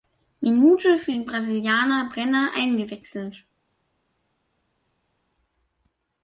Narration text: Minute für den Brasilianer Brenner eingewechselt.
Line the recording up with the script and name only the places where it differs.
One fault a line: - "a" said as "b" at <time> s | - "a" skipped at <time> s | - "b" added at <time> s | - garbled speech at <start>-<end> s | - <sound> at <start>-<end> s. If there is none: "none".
none